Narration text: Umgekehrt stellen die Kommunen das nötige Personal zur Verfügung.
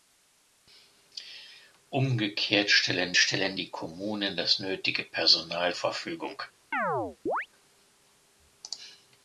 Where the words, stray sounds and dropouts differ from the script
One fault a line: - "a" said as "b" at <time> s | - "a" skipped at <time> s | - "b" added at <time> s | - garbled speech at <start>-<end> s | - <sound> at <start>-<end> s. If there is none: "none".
- "stellen" added at 3.2 s
- "zur" skipped at 5.8 s
- chirp at 6.7-7.5 s